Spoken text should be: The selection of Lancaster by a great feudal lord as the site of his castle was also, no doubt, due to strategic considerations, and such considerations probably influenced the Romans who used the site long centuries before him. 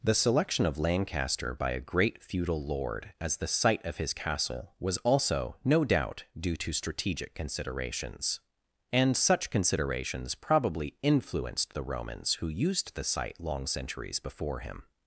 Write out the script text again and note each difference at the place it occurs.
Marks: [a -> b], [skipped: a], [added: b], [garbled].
The selection of Lancaster by a great feudal lord as the site of his castle was also, no doubt, due to strategic considerations, and such considerations probably influenced the Romans who used the site long centuries before him.